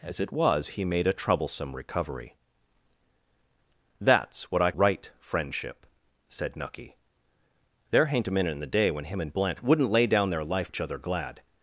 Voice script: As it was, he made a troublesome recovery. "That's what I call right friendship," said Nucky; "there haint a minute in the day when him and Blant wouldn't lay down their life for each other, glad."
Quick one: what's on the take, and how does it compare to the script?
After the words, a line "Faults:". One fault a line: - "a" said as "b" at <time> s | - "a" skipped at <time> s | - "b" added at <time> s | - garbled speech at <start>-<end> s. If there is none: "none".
As it was, he made a troublesome recovery. "That's what I right friendship," said Nucky; "there haint a minute in the day when him and Blant wouldn't lay down their life each other, glad."
Faults:
- "call" skipped at 4.7 s
- "for" skipped at 10.7 s